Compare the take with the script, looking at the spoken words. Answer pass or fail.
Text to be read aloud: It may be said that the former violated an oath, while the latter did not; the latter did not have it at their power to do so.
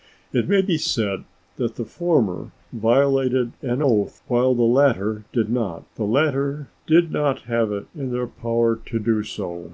fail